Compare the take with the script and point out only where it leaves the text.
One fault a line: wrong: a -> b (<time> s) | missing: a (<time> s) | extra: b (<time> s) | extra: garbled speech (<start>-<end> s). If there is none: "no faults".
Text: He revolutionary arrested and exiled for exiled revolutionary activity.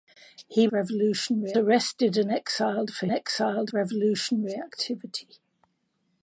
no faults